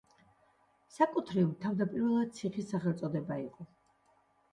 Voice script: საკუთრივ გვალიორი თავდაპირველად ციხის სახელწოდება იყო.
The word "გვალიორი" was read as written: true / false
false